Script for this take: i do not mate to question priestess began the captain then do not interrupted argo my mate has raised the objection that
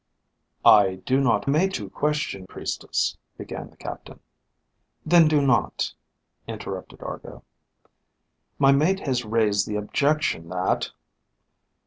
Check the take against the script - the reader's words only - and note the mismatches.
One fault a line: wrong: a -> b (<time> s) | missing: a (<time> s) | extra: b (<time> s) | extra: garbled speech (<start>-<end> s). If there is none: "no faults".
no faults